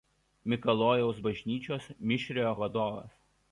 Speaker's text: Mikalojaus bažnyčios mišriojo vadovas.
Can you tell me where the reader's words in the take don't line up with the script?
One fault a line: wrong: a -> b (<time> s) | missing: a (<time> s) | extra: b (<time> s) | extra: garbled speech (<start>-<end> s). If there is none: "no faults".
no faults